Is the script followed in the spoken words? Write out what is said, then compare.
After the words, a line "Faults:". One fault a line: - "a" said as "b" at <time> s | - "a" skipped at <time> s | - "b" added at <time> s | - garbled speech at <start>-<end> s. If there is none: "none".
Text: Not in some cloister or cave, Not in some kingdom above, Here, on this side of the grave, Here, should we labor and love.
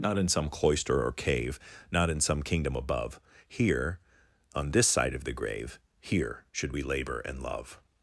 Not in some cloister or cave, Not in some kingdom above, Here, on this side of the grave, Here, should we labor and love.
Faults:
none